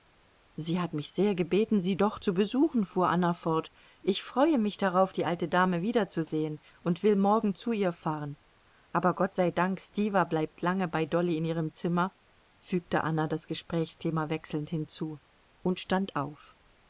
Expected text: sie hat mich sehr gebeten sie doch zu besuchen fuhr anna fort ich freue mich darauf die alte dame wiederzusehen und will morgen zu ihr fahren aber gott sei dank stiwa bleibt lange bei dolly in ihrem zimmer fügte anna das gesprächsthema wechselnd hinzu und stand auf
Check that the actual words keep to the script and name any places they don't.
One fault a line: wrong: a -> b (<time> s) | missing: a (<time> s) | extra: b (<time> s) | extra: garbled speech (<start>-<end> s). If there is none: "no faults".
no faults